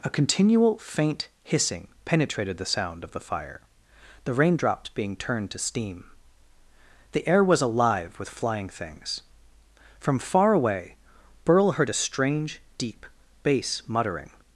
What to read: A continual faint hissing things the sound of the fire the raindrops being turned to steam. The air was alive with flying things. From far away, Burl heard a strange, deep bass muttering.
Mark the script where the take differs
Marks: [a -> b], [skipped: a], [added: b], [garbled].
A continual faint hissing [things -> penetrated] the sound of the fire the raindrops being turned to steam. The air was alive with flying things. From far away, Burl heard a strange, deep bass muttering.